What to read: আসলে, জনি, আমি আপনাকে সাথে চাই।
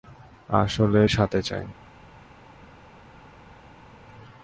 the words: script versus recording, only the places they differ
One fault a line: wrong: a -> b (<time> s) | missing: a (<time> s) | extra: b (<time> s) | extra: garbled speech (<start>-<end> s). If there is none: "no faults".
missing: জনি আমি আপনাকে (1.0 s)